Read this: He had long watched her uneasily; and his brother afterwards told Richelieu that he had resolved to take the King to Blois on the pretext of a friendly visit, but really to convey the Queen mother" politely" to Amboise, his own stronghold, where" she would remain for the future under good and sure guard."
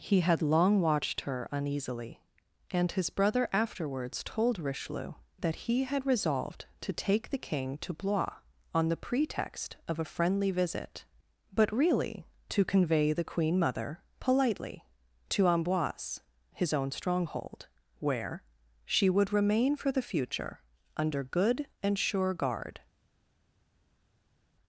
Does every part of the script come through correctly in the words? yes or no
yes